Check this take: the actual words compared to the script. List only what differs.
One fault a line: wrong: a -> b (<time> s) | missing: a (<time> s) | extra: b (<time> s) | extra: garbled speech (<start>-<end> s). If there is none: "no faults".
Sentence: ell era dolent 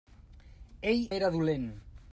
no faults